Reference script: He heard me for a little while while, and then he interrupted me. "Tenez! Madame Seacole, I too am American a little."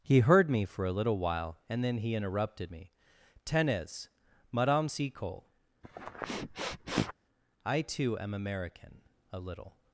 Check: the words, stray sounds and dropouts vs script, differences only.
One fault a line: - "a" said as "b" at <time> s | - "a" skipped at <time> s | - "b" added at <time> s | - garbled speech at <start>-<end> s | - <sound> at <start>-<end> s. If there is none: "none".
- "while" skipped at 1.6 s
- sniff at 5.8-7.1 s